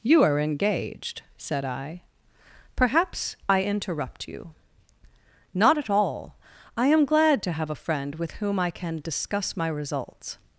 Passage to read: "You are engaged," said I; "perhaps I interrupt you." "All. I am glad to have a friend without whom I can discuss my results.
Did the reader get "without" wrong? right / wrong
wrong